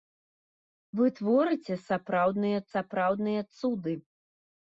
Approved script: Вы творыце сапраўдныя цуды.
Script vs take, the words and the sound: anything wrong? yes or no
yes